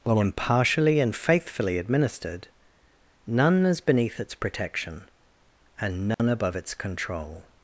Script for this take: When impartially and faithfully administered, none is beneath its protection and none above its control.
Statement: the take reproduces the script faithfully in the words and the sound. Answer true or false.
false